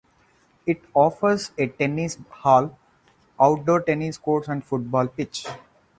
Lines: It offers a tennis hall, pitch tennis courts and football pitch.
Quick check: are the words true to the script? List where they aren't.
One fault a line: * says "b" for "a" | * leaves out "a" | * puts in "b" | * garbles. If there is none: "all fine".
* says "outdoor" for "pitch"